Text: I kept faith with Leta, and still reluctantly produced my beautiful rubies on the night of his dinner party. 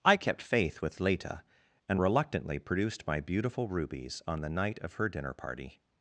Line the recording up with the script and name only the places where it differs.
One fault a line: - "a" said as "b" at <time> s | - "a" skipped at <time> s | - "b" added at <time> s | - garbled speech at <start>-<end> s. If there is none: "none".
- "still" skipped at 2.0 s
- "his" said as "her" at 4.9 s